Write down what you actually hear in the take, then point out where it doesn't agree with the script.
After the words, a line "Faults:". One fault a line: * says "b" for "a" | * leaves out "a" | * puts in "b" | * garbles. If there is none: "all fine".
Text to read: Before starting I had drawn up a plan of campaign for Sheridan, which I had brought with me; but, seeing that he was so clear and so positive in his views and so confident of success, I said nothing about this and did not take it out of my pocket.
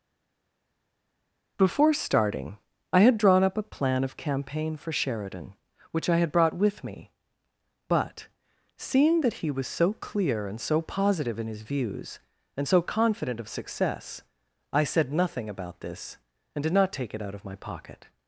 Before starting I had drawn up a plan of campaign for Sheridan, which I had brought with me; but, seeing that he was so clear and so positive in his views and so confident of success, I said nothing about this and did not take it out of my pocket.
Faults:
all fine